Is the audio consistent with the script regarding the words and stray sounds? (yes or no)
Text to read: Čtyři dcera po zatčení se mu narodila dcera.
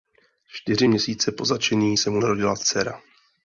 no